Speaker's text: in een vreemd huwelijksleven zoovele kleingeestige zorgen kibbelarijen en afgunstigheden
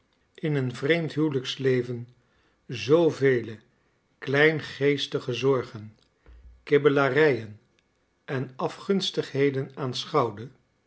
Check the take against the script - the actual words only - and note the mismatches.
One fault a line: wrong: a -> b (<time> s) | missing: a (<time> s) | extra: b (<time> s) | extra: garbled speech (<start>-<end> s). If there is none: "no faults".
no faults